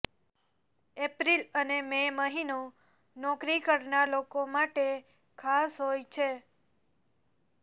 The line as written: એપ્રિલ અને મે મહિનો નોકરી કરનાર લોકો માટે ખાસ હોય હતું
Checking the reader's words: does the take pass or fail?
fail